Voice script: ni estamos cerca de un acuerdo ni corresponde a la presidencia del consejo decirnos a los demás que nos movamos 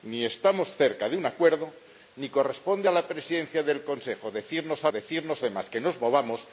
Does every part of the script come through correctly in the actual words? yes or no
no